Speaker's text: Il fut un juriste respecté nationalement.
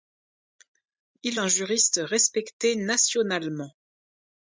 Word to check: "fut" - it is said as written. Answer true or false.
false